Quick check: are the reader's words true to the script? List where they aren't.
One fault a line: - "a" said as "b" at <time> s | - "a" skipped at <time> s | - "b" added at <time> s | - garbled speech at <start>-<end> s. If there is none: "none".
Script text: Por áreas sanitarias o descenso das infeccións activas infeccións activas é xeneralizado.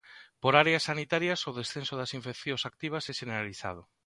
- "infeccións activas" skipped at 3.0 s